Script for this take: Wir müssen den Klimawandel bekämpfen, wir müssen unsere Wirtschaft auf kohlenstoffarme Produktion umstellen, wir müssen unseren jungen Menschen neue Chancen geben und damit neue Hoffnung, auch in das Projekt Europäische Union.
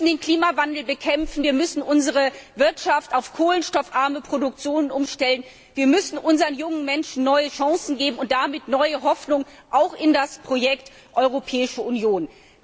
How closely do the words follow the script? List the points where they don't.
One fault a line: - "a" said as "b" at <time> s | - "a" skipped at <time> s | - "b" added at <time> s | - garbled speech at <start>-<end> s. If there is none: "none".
none